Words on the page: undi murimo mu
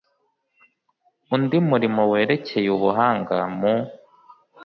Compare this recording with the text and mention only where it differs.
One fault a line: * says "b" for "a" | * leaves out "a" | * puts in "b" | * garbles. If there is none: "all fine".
* puts in "werekeye ubuhanga"